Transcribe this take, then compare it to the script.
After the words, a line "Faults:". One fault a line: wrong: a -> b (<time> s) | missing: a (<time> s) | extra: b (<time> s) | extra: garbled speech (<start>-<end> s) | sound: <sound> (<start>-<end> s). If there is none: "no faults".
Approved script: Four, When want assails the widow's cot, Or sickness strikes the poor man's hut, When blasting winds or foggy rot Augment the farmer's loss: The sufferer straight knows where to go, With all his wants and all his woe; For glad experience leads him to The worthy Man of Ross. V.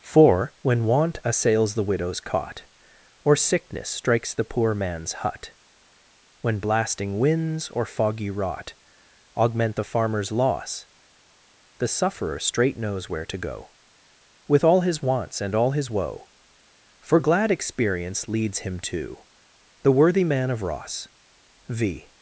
Four, When want assails the widow's cot, Or sickness strikes the poor man's hut, When blasting winds or foggy rot Augment the farmer's loss: The sufferer straight knows where to go, With all his wants and all his woe; For glad experience leads him to The worthy Man of Ross. V.
Faults:
no faults